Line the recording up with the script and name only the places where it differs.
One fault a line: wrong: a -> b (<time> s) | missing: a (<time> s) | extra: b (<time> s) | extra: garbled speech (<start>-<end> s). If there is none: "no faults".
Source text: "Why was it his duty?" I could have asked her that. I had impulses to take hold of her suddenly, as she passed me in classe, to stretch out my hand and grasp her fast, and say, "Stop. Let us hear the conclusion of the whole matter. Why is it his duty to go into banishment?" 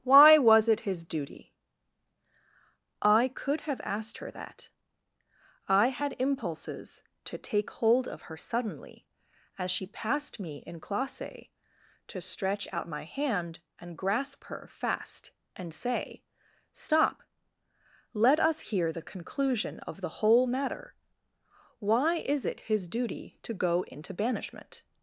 no faults